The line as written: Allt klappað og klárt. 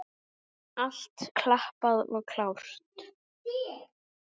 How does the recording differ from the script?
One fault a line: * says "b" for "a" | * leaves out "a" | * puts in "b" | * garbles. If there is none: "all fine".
all fine